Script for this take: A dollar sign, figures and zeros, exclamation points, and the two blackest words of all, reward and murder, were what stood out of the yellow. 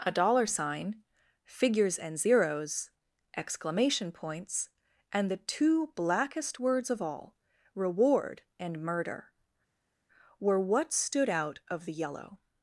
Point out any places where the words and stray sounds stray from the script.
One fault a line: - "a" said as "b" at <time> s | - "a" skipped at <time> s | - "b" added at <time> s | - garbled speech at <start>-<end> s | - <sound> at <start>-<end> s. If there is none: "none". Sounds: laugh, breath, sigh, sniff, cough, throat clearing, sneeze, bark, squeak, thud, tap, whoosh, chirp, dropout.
none